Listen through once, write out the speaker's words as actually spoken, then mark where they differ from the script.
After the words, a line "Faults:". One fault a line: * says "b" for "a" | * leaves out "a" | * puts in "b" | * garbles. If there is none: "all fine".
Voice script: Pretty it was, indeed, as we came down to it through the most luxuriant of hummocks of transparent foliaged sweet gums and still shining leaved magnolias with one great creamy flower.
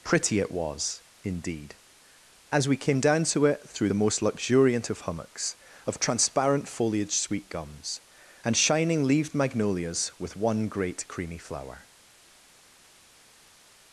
Pretty it was, indeed, as we came down to it through the most luxuriant of hummocks of transparent foliaged sweet gums and shining leaved magnolias with one great creamy flower.
Faults:
* leaves out "still"